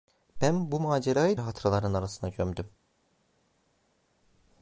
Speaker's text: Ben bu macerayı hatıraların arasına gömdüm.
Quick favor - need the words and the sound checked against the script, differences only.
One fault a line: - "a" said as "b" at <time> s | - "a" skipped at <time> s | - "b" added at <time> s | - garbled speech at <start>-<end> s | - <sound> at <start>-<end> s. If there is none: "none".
none